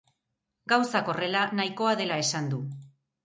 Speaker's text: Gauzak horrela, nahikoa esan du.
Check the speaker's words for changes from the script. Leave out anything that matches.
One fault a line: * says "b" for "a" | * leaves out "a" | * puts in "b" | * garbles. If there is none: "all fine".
* puts in "dela"